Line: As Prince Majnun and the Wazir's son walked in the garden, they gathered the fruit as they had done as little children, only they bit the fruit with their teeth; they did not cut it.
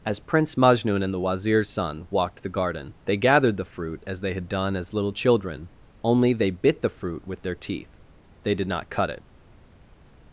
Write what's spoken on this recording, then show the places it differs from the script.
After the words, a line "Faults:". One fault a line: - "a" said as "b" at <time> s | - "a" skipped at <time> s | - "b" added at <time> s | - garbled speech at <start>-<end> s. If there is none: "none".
As Prince Majnun and the Wazir's son walked the garden, they gathered the fruit as they had done as little children, only they bit the fruit with their teeth; they did not cut it.
Faults:
- "in" skipped at 2.4 s